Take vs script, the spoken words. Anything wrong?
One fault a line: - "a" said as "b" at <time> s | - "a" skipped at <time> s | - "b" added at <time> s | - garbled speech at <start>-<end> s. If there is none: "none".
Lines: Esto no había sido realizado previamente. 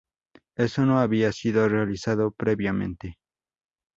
none